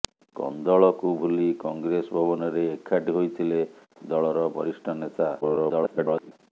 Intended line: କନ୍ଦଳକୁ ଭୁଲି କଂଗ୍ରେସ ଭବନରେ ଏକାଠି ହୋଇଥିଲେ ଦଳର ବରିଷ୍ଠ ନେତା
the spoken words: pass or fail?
fail